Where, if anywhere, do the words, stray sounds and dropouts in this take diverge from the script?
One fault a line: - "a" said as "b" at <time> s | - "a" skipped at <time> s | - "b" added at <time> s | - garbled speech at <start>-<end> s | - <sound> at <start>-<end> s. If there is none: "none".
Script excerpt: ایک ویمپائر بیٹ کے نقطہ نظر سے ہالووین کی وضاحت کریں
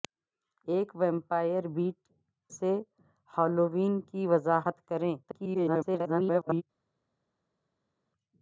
- "کے نقطہ نظر" skipped at 2.0 s
- garbled speech at 5.2-6.6 s